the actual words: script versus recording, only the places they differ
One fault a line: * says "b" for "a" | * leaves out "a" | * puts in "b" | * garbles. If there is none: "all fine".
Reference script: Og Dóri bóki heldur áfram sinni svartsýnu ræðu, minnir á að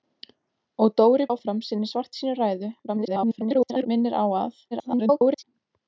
* leaves out "bóki heldur"
* garbles
* garbles